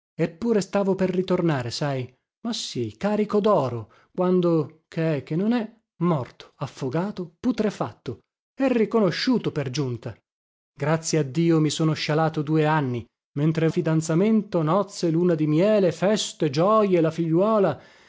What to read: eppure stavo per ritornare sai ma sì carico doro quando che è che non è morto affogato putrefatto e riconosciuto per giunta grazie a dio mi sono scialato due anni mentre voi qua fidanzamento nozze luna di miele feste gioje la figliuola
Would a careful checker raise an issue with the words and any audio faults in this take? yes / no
yes